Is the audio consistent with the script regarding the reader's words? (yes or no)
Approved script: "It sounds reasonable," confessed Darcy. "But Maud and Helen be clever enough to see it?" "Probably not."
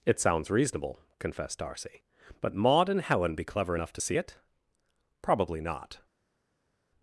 yes